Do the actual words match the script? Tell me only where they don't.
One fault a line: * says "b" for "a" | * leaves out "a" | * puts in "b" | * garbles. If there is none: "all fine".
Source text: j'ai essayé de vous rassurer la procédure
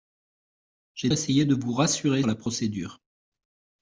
all fine